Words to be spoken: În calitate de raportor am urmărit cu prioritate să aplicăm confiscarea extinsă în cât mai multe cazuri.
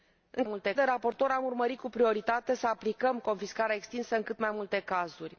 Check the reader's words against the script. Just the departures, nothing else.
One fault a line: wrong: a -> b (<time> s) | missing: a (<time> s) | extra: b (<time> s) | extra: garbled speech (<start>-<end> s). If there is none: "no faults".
wrong: calitate -> multe (0.4 s)